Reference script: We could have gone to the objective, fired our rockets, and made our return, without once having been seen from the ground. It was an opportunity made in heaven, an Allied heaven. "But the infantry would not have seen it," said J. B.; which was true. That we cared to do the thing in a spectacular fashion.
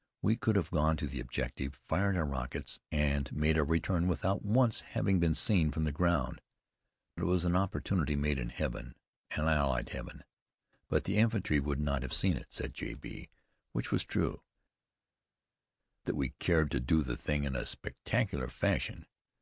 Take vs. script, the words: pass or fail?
pass